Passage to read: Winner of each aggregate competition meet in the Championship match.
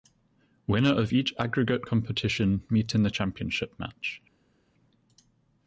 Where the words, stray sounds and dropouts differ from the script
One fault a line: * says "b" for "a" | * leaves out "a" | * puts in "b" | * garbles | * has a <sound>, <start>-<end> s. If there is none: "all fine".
all fine